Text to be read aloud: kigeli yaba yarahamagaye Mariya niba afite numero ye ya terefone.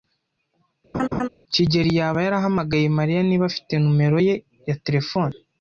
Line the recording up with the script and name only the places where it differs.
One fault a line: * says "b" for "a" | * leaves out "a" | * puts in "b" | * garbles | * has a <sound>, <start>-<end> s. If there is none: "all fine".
* has a laugh, 0.9-1.3 s